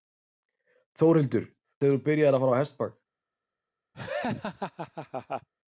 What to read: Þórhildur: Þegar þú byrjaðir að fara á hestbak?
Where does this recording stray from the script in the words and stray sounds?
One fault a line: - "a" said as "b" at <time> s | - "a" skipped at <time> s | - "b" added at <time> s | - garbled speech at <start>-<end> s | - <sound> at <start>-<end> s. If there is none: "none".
- laugh at 3.9-5.5 s